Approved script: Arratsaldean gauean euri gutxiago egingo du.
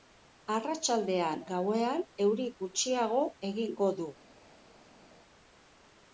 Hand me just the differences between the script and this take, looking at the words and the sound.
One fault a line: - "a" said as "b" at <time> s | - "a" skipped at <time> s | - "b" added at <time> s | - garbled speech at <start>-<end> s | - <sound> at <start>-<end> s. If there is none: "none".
none